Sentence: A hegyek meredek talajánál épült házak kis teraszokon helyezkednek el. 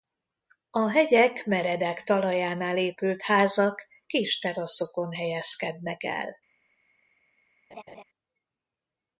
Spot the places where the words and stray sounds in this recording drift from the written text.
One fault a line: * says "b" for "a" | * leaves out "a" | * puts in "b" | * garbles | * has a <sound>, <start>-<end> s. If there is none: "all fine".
* has a laugh, 7.7-8.0 s